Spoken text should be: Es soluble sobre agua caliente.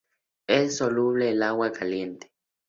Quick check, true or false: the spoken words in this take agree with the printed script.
false